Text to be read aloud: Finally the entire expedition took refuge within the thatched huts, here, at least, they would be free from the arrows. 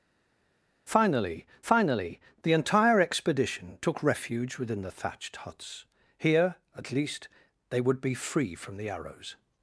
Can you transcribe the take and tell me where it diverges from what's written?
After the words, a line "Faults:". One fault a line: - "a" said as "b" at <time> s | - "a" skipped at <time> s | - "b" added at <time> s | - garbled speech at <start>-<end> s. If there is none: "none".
Finally finally the entire expedition took refuge within the thatched huts, here, at least, they would be free from the arrows.
Faults:
- "finally" added at 1.6 s